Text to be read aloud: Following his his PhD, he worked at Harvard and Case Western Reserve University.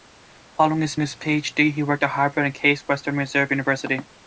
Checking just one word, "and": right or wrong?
right